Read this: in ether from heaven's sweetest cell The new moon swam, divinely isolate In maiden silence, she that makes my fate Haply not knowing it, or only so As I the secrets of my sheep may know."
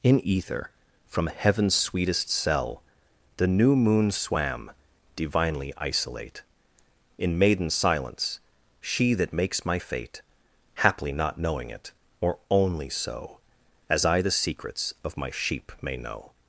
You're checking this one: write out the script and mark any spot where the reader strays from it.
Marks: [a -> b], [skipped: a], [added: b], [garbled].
in ether from heaven's sweetest cell The new moon swam, divinely isolate In maiden silence, she that makes my fate Haply not knowing it, or only so As I the secrets of my sheep may know."